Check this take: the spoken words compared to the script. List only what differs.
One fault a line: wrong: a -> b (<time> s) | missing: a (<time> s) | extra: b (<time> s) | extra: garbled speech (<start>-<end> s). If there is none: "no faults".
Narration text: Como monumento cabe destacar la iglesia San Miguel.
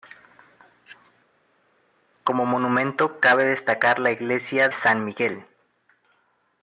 no faults